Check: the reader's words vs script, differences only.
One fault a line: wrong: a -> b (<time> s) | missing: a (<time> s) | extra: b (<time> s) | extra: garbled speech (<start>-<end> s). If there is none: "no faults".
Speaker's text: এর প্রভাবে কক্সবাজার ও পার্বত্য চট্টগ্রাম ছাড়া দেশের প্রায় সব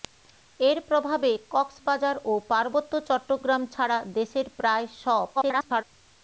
extra: garbled speech (5.3-5.8 s)